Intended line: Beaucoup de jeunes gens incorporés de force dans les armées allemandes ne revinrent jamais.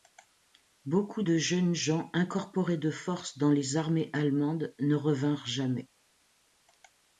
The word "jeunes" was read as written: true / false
true